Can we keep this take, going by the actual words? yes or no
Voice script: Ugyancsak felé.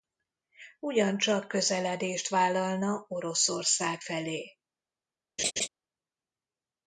no